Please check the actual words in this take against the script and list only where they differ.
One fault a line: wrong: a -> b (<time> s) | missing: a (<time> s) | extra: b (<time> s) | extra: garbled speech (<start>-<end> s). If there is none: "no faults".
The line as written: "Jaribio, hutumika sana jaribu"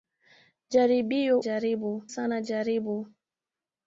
wrong: hutumika -> jaribu (1.4 s)